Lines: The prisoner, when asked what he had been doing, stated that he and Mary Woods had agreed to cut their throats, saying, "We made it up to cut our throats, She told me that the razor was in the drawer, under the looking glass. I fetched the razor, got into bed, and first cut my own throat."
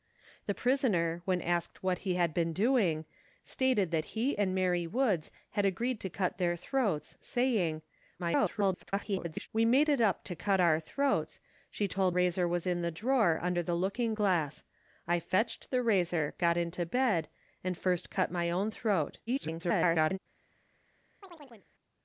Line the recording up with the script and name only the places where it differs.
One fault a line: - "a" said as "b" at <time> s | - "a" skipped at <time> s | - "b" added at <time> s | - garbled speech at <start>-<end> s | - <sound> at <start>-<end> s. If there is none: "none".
- garbled speech at 8.2-9.5 s
- "me that the" skipped at 12.2 s
- garbled speech at 19.3-20.2 s
- chirp at 21.2-21.7 s